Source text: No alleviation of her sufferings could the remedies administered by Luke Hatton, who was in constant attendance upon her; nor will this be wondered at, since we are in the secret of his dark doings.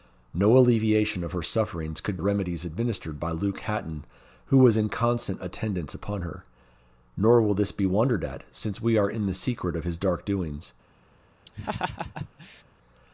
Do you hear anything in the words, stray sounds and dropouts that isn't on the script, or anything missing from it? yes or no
yes